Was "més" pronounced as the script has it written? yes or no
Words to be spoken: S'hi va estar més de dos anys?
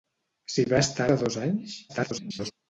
no